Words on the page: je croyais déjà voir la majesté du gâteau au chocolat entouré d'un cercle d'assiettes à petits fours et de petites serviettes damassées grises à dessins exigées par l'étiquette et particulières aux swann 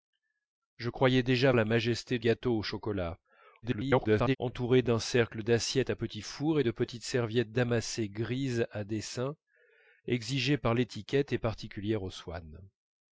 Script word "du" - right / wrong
wrong